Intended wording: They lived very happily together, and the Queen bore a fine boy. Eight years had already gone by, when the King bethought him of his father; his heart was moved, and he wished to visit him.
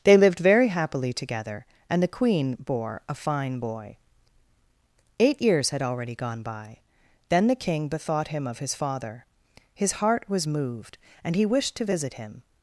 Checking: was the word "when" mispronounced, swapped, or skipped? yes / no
yes